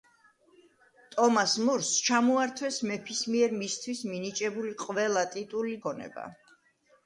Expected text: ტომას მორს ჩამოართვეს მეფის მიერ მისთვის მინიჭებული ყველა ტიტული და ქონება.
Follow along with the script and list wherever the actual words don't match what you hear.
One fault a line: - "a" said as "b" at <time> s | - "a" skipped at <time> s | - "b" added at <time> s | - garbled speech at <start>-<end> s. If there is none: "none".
- "და" skipped at 5.8 s